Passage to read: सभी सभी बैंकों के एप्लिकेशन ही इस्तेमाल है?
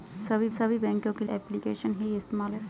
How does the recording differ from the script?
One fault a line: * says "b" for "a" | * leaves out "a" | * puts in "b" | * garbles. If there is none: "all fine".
all fine